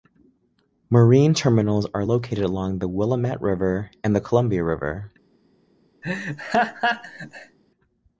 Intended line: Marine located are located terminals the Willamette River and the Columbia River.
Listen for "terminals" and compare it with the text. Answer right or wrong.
wrong